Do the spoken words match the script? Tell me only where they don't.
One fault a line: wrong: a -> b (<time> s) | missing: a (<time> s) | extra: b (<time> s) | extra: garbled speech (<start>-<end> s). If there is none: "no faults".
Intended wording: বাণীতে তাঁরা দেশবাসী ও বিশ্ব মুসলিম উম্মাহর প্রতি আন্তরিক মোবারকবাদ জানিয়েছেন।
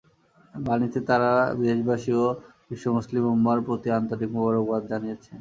no faults